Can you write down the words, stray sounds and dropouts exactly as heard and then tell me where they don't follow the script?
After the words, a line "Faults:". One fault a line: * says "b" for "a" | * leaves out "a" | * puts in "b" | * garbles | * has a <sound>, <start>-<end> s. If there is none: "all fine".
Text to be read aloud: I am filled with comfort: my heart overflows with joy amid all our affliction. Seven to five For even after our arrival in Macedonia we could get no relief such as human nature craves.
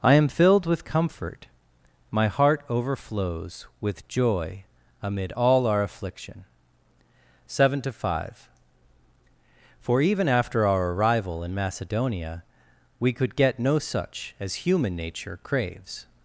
I am filled with comfort: my heart overflows with joy amid all our affliction. Seven to five For even after our arrival in Macedonia we could get no such as human nature craves.
Faults:
* leaves out "relief"